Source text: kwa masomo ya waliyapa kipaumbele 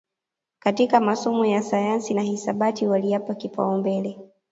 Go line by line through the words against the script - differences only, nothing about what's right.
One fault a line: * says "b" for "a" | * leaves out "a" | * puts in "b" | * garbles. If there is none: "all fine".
* says "katika" for "kwa"
* puts in "sayansi na hisabati"